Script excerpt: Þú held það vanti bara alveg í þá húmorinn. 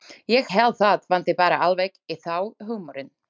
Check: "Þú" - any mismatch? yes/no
yes